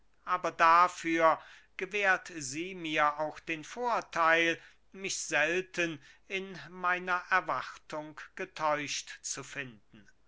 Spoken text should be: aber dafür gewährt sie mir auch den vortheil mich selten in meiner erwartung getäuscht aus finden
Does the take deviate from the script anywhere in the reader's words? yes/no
yes